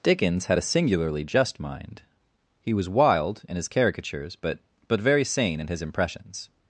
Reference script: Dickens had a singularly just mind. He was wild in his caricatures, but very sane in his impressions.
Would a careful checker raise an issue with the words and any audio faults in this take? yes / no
yes